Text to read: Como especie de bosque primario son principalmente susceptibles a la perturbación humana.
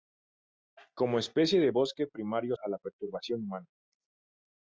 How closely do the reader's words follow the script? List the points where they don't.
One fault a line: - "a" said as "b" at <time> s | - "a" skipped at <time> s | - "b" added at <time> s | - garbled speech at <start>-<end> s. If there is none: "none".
- "son principalmente susceptibles" skipped at 2.6 s